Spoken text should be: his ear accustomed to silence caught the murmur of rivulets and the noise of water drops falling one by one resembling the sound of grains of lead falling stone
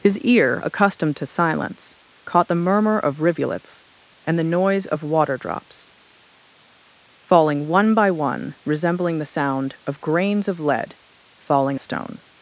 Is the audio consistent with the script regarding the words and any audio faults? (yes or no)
yes